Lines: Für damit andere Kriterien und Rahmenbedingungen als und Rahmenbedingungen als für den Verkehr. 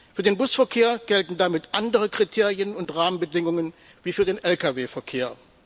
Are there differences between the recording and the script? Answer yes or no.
yes